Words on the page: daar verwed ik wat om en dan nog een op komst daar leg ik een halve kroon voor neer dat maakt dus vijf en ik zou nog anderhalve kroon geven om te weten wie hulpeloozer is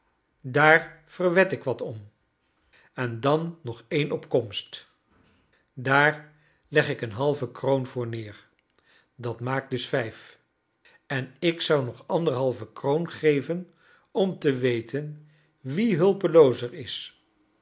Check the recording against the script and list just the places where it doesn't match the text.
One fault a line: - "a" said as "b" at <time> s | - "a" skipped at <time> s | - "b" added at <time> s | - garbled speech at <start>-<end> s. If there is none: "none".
none